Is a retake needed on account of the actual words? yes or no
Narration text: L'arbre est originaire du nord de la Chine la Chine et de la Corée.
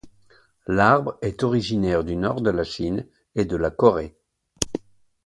yes